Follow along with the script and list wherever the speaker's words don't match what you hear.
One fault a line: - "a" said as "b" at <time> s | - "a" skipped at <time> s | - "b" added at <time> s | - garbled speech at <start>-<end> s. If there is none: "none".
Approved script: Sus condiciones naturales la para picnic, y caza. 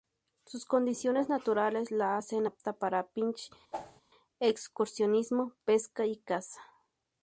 - "hacen apta" added at 2.2 s
- "excursionismo pesca" added at 4.4 s